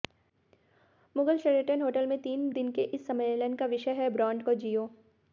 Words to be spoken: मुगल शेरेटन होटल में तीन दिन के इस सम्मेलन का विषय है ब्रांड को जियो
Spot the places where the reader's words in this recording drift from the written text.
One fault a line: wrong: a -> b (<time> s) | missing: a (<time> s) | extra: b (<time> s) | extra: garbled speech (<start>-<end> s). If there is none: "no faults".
no faults